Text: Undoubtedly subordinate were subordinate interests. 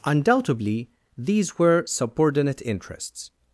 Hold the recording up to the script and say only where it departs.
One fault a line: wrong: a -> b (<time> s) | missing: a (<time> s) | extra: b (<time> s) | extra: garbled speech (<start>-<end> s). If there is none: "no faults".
wrong: subordinate -> these (1.1 s)